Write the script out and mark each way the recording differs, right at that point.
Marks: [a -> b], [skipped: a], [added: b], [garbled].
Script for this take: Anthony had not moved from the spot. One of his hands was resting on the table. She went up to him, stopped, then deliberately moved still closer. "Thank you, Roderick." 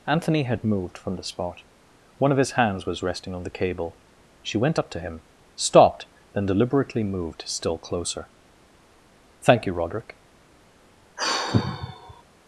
Anthony had [skipped: not] moved from the spot. One of his hands was resting on the [table. -> cable] She went up to him, stopped, then deliberately moved still closer. "Thank you, Roderick."